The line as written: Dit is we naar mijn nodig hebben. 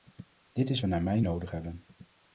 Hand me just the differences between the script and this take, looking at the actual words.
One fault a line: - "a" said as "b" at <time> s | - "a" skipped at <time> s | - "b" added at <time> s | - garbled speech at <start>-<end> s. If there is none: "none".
none